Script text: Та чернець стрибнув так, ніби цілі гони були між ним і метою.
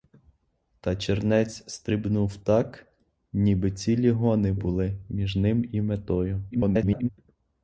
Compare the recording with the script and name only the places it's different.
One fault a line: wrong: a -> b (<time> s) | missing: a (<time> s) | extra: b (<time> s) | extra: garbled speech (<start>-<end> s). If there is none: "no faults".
extra: garbled speech (6.5-7.1 s)